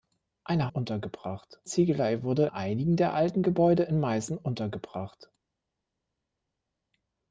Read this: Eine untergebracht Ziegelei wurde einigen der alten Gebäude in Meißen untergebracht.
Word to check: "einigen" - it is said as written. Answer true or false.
true